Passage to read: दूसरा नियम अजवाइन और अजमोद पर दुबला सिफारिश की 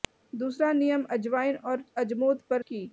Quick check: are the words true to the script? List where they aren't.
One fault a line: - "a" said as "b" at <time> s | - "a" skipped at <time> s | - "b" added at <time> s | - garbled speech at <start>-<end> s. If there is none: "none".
- "दुबला सिफारिश" skipped at 2.6 s